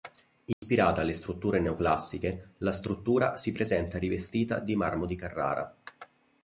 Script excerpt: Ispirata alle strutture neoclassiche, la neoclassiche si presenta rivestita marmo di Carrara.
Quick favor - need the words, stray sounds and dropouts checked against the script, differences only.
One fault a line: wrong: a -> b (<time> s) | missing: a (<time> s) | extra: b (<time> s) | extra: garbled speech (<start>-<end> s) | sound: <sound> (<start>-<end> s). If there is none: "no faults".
sound: dropout (0.5-0.6 s)
wrong: neoclassiche -> struttura (2.7 s)
extra: di (4.6 s)